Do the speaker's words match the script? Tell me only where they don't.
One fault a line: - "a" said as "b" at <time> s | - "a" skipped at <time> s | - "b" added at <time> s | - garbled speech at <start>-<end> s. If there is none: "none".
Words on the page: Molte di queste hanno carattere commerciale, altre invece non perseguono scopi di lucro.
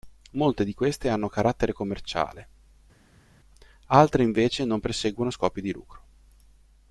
none